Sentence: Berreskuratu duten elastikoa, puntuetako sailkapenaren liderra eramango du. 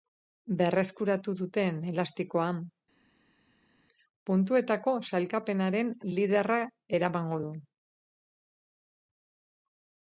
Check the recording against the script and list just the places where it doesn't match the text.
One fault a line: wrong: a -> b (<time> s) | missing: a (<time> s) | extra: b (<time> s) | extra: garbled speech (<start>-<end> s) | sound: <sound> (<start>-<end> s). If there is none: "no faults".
no faults